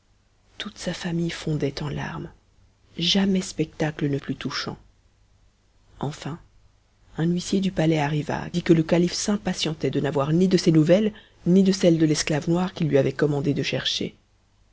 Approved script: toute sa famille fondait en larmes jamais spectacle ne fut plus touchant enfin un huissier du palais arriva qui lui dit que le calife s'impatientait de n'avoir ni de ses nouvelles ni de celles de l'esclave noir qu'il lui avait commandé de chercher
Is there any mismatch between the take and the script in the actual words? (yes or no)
yes